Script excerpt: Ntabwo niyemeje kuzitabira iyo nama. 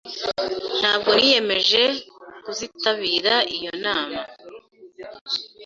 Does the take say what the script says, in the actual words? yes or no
yes